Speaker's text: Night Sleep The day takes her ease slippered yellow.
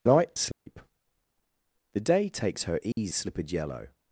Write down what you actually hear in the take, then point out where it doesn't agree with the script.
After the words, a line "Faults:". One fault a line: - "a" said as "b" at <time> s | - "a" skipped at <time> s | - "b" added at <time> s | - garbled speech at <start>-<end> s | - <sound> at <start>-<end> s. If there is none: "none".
Night Sleep The day takes her ease slippered yellow.
Faults:
- dropout at 0.5-0.7 s
- dropout at 2.9-3.0 s